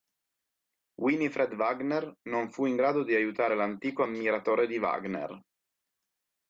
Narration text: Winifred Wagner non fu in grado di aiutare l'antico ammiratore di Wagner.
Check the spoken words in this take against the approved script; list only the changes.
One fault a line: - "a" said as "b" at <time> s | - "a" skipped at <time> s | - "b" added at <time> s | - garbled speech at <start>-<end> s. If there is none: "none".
none